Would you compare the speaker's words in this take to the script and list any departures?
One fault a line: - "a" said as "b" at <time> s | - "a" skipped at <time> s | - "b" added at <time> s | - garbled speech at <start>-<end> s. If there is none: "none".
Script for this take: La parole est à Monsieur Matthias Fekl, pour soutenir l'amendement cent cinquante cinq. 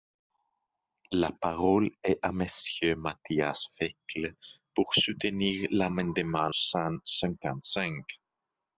none